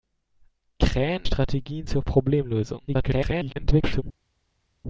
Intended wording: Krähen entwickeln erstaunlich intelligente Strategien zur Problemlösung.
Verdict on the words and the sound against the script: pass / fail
fail